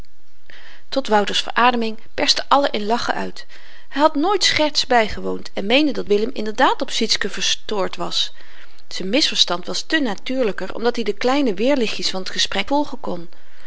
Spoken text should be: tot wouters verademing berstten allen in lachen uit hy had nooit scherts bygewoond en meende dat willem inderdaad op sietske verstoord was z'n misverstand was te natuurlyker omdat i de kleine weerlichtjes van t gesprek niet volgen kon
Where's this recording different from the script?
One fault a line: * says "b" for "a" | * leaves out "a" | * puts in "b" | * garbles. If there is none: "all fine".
* leaves out "niet"